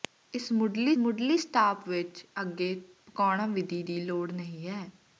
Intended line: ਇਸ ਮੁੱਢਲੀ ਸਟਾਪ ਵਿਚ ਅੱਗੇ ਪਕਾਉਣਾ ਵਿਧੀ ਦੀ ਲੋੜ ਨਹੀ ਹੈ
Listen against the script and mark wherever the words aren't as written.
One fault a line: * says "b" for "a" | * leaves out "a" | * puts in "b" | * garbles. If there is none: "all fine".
* puts in "ਮੁੱਢਲੀ"